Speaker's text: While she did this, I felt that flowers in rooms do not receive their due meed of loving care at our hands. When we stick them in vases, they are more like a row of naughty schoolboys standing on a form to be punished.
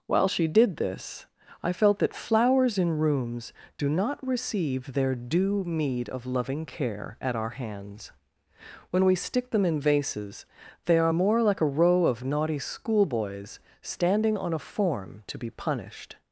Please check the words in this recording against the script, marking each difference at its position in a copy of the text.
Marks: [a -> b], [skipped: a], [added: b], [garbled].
While she did this, I felt that flowers in rooms do not receive their due meed of loving care at our hands. When we stick them in vases, they are more like a row of naughty schoolboys standing on a form to be punished.